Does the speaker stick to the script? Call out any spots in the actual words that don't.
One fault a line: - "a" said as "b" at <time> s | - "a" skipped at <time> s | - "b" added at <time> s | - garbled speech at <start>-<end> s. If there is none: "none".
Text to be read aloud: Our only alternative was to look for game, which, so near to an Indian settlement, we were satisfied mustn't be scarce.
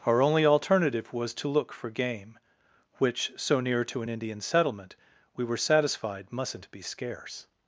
none